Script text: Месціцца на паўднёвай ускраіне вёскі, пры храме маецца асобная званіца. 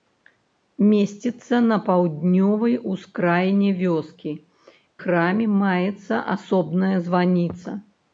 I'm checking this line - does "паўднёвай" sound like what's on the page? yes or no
yes